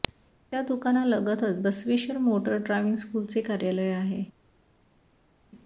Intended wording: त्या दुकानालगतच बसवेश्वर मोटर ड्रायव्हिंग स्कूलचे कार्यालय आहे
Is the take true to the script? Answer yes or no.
yes